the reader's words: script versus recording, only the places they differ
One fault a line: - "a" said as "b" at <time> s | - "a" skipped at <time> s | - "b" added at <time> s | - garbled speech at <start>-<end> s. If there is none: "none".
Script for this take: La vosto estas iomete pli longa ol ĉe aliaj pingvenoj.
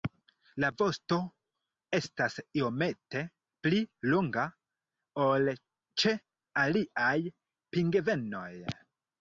none